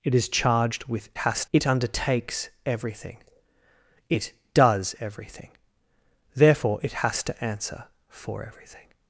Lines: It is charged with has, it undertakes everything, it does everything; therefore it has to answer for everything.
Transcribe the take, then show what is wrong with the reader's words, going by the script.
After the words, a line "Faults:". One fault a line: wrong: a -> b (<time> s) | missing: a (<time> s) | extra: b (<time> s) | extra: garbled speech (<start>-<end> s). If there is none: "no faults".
It is charged with has, it undertakes everything, it does everything; therefore it has to answer for everything.
Faults:
no faults